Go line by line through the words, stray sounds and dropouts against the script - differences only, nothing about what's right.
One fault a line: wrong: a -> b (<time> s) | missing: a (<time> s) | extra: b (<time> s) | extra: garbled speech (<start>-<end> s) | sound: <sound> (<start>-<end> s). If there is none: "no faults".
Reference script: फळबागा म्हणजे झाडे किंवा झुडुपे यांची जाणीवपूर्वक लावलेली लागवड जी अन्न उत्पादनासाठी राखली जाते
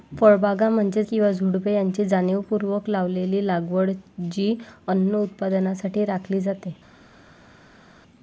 missing: झाडे (1.0 s)